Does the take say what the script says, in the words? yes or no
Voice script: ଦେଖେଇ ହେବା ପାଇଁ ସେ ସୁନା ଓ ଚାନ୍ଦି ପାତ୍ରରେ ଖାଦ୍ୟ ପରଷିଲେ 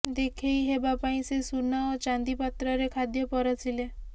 yes